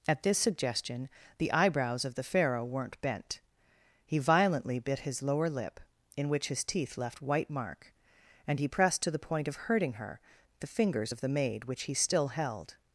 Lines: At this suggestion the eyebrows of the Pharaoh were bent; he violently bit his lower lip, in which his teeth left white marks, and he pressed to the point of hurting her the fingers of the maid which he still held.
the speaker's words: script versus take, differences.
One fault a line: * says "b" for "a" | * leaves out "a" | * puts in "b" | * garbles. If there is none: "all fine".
* says "weren't" for "were"
* says "mark" for "marks"